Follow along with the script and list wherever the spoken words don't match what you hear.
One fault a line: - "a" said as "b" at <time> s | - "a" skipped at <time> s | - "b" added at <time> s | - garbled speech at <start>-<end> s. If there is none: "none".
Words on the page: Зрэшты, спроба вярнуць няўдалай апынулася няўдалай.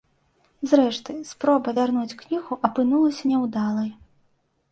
- "няўдалай" said as "кнігу" at 2.2 s